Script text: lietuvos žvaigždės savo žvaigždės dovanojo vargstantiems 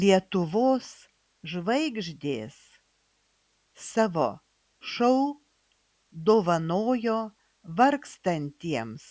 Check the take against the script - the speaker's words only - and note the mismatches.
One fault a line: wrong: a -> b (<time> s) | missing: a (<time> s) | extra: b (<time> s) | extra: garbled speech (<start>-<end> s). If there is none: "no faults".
wrong: žvaigždės -> šou (4.9 s)